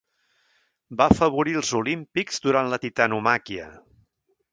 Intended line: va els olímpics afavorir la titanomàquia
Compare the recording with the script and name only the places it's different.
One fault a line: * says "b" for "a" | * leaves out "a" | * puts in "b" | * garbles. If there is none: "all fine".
* puts in "afavorir"
* says "durant" for "afavorir"